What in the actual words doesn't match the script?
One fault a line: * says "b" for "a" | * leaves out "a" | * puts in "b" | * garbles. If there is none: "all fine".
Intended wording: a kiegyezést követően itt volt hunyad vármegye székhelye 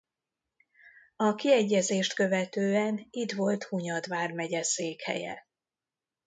all fine